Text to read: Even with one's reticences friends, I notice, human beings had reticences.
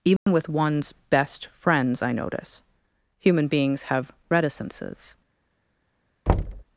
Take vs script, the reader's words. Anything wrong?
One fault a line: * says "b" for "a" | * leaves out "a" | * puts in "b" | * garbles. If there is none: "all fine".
* says "best" for "reticences"
* says "have" for "had"